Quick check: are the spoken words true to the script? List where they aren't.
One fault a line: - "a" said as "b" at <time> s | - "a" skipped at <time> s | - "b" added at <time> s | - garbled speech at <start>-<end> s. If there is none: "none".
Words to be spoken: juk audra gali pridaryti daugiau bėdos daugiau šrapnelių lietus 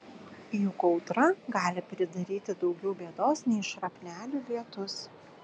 - "daugiau" said as "nei" at 3.5 s